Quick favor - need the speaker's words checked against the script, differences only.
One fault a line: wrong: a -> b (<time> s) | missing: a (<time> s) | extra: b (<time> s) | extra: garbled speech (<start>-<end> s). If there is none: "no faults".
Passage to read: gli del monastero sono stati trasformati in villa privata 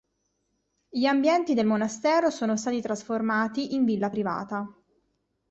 extra: ambienti (1.1 s)